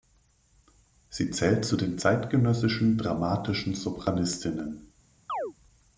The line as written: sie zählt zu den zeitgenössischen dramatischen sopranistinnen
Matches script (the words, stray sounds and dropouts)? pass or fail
fail